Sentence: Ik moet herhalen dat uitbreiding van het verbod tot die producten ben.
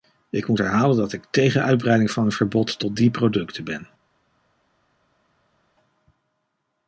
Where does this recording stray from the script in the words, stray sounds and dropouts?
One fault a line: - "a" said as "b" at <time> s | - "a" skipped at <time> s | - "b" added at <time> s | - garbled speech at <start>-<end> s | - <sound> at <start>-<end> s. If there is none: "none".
- "ik tegen" added at 1.1 s